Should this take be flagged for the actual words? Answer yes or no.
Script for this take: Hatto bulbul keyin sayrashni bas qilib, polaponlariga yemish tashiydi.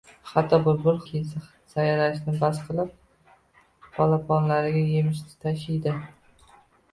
no